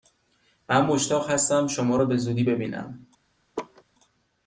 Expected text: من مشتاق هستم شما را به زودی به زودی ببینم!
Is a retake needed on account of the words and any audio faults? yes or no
yes